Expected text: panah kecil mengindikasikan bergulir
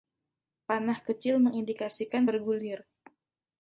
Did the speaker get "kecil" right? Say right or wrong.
right